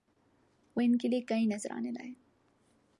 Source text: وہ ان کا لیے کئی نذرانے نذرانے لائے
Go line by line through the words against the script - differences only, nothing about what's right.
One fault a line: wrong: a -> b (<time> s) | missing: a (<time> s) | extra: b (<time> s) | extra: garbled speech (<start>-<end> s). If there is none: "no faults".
wrong: کا -> کے (1.0 s)
missing: نذرانے (1.9 s)